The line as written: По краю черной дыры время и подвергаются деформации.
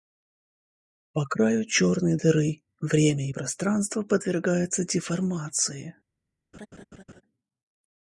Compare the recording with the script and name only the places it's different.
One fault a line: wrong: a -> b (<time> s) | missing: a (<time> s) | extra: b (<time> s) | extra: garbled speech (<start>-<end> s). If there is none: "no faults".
extra: пространство (3.3 s)